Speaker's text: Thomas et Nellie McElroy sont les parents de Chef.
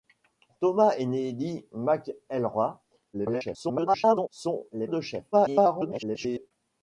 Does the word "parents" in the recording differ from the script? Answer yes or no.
yes